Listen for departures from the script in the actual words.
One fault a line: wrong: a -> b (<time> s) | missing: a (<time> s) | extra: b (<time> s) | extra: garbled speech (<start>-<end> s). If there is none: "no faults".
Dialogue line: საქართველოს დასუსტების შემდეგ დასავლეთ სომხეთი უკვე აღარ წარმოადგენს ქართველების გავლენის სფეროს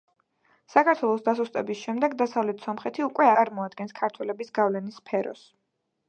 missing: აღარ (3.3 s)